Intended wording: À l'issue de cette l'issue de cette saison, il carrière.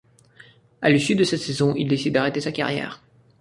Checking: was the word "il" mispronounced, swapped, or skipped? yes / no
yes